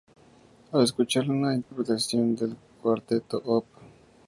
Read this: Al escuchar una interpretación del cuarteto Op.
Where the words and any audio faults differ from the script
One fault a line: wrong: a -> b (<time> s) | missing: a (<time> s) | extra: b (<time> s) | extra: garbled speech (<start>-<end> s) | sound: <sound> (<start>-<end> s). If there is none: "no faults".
sound: dropout (1.6-1.7 s)